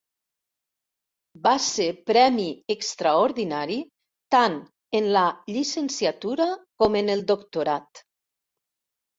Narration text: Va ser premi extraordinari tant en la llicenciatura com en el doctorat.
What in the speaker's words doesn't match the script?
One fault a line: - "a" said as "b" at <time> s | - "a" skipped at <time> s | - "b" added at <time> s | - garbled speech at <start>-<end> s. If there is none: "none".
none